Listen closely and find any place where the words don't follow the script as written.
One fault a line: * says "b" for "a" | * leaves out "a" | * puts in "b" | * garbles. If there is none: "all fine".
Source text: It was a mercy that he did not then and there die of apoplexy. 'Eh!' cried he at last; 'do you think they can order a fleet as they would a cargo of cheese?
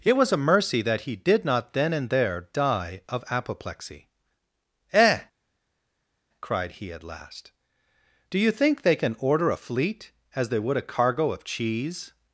all fine